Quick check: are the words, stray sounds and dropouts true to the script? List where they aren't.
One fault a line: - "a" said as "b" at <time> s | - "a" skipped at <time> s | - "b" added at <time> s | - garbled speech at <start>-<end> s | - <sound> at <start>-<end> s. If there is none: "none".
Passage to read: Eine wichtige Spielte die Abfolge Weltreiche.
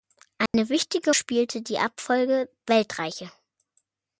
- dropout at 0.5-0.5 s